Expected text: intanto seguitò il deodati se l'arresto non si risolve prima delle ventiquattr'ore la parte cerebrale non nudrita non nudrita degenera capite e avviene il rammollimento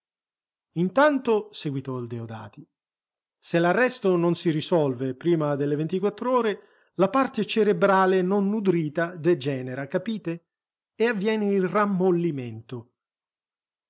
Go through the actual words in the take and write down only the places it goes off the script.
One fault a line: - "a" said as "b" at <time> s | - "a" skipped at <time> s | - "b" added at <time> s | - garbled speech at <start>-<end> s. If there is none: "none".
- "non nudrita" skipped at 9.2 s